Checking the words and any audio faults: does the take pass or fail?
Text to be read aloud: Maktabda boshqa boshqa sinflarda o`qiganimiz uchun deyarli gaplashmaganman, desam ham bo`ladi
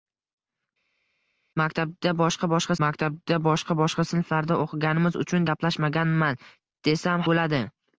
fail